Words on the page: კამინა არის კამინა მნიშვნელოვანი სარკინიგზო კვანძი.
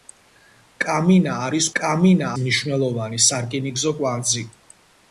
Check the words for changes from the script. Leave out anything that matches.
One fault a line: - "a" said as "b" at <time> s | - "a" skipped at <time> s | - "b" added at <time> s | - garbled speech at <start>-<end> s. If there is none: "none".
none